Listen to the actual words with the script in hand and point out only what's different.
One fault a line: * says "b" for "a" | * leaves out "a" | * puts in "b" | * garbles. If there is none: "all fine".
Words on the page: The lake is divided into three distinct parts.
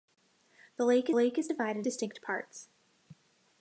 * puts in "lake"
* leaves out "into three"